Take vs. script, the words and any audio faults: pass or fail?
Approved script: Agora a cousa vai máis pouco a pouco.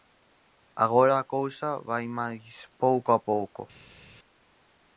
pass